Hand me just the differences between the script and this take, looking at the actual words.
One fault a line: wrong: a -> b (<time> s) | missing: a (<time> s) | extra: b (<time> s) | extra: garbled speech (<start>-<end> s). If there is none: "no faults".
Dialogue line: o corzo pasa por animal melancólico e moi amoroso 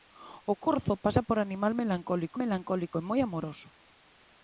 extra: melancólico (2.4 s)